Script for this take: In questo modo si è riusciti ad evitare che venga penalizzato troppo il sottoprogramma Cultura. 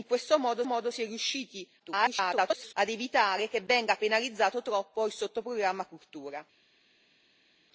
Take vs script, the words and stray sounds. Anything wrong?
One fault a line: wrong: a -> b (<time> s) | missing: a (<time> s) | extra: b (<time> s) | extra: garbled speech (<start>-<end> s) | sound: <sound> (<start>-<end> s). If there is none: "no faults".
extra: modo (0.7 s)
extra: garbled speech (1.8-2.7 s)